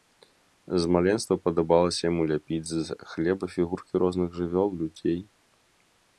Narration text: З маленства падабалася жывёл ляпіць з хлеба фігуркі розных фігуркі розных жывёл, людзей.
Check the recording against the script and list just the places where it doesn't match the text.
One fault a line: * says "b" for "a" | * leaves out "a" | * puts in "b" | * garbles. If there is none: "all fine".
* says "яму" for "жывёл"
* leaves out "фігуркі розных"